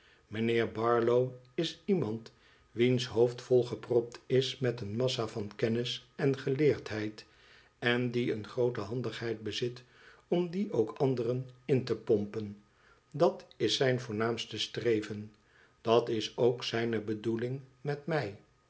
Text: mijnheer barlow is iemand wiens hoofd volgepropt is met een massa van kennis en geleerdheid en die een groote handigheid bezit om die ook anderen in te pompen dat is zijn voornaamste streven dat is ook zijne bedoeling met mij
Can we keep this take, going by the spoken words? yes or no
yes